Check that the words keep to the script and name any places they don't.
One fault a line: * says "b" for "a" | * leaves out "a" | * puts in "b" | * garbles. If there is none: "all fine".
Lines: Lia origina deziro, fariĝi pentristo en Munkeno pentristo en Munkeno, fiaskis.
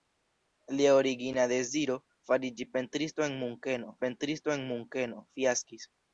all fine